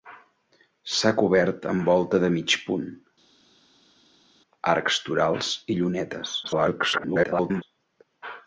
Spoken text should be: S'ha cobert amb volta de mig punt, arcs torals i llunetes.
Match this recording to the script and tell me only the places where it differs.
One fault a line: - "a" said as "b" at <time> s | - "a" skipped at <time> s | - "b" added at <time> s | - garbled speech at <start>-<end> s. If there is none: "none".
- garbled speech at 6.4-7.6 s